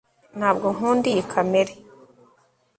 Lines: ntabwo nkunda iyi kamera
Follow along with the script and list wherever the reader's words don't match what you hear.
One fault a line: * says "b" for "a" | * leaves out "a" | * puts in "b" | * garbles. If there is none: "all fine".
all fine